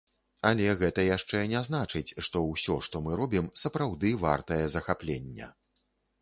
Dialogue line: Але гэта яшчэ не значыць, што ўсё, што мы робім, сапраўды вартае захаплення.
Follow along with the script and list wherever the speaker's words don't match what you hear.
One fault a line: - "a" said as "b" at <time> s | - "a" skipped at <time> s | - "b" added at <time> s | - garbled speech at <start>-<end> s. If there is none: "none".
none